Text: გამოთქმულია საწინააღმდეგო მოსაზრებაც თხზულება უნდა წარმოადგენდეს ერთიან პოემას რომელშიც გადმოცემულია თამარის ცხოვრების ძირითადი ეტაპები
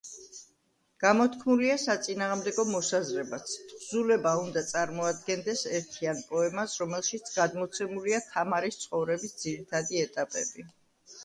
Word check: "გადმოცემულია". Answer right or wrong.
right